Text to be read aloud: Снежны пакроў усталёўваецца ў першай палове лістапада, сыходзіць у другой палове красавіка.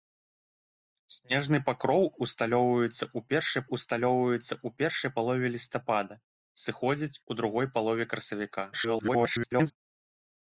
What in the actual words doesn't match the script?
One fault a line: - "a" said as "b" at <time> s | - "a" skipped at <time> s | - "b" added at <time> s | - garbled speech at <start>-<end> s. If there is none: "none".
- "усталёўваецца ў першай" added at 3.8 s
- garbled speech at 8.7-9.7 s